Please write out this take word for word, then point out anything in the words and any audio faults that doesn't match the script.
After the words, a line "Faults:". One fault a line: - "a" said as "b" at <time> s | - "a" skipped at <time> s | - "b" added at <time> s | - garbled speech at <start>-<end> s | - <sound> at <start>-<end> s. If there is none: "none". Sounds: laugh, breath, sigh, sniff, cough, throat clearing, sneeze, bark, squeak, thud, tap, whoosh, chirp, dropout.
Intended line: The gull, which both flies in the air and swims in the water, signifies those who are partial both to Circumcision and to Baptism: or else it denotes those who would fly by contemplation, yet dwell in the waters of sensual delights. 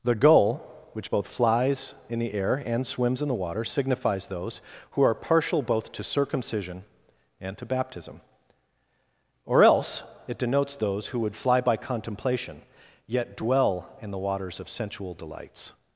The gull, which both flies in the air and swims in the water, signifies those who are partial both to Circumcision and to Baptism: or else it denotes those who would fly by contemplation, yet dwell in the waters of sensual delights.
Faults:
none